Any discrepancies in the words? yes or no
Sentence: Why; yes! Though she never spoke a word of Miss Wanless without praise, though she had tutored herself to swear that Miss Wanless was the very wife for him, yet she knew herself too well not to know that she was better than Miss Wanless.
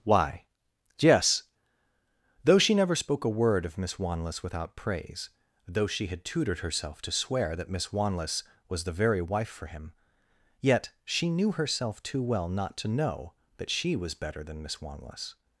no